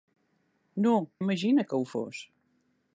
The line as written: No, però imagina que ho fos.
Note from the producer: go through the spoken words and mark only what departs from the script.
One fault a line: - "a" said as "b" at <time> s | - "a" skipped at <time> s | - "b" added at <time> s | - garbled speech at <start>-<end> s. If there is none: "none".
- "però" skipped at 0.9 s